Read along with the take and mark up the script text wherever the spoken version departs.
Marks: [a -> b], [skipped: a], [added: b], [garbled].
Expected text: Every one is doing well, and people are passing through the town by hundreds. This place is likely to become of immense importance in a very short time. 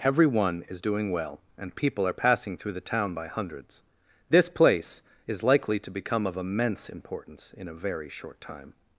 Every one is doing well, and people are passing through the town by hundreds. This place is likely to become of immense importance in a very short time.